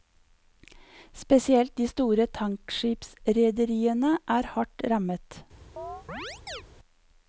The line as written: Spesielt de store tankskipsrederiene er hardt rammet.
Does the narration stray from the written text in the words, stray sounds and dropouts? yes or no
yes